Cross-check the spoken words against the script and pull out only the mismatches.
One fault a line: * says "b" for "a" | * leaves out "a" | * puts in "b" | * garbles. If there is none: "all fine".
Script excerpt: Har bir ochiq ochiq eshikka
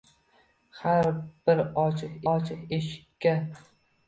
all fine